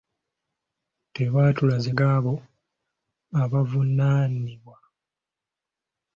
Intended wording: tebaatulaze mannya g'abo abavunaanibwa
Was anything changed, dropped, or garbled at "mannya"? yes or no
yes